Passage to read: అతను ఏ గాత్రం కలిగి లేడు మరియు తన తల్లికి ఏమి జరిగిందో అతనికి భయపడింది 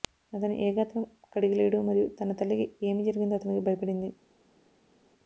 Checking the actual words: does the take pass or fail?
pass